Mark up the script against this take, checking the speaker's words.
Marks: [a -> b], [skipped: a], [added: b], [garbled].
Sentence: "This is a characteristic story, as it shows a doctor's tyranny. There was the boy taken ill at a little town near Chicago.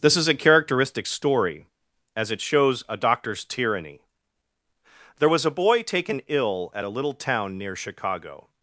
"This is a characteristic story, as it shows a doctor's tyranny. There was [the -> a] boy taken ill at a little town near Chicago.